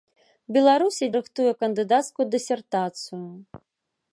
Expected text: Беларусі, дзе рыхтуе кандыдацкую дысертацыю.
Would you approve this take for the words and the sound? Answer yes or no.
no